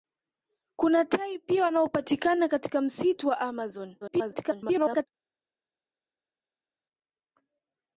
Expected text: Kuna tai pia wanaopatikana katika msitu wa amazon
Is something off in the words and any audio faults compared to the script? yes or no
yes